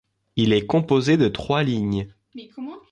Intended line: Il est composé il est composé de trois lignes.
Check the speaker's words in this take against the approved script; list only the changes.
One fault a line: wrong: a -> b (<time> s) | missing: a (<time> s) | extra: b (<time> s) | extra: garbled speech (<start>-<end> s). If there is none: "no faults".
missing: il est composé (1.2 s)